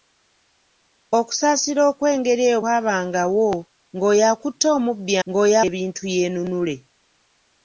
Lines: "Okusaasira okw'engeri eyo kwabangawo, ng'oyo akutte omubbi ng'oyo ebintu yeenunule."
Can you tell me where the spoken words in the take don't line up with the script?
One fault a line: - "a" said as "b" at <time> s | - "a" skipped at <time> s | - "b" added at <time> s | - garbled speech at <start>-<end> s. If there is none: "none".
none